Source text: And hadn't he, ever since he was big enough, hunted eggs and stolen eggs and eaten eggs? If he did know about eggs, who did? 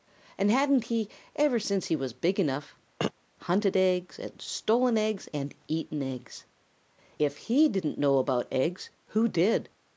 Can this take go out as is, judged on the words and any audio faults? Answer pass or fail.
fail